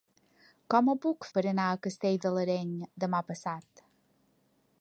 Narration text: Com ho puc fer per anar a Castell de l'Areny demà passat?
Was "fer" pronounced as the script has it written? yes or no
no